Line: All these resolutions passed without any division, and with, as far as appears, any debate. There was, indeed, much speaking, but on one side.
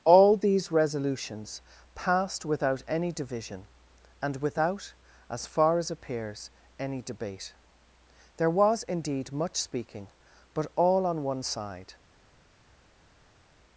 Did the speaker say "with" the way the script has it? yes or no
no